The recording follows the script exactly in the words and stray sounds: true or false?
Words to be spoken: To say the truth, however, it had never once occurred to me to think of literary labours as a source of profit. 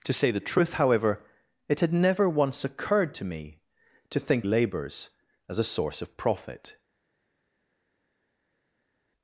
false